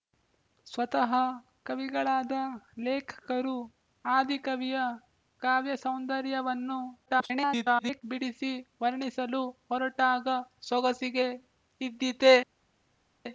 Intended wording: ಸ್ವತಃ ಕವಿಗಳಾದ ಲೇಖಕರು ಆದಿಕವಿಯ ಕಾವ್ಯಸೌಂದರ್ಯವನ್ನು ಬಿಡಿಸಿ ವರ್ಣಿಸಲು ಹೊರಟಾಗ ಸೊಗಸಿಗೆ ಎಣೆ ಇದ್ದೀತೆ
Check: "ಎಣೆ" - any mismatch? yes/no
yes